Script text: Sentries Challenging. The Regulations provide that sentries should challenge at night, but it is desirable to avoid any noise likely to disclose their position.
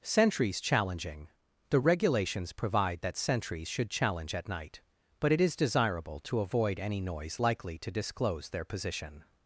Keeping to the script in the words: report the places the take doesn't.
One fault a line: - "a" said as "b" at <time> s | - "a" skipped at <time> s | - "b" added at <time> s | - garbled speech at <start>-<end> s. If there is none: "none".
none